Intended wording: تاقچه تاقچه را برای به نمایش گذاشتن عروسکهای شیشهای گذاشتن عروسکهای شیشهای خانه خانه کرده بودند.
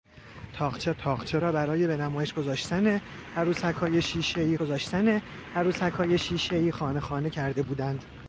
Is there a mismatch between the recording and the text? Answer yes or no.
no